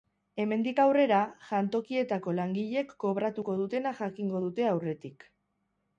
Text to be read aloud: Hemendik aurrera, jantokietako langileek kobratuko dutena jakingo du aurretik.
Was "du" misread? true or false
true